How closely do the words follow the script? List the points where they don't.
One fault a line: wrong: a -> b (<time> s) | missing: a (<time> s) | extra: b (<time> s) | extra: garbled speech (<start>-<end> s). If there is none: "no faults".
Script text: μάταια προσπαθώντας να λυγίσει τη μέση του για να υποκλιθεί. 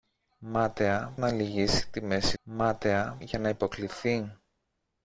missing: προσπαθώντας (1.1 s)
wrong: του -> μάταια (2.4 s)